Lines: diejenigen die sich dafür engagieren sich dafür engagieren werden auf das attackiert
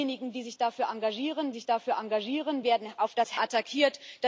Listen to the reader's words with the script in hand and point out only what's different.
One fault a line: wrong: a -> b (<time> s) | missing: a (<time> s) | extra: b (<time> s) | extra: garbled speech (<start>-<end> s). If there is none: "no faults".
no faults